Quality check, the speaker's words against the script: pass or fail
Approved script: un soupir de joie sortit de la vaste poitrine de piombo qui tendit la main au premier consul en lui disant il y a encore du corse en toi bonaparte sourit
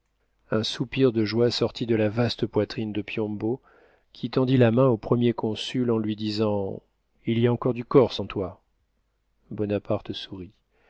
pass